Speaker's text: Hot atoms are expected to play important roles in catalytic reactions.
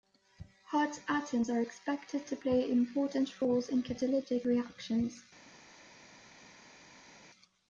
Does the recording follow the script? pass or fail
pass